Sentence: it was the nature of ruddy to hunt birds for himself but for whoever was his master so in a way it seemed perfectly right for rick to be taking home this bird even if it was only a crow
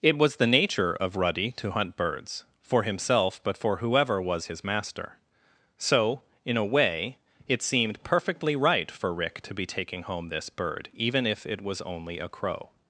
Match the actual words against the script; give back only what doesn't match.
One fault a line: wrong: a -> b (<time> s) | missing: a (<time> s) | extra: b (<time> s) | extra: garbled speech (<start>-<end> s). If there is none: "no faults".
no faults